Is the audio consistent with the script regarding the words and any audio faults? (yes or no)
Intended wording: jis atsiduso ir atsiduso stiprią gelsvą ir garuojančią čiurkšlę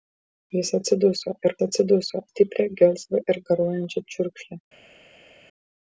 yes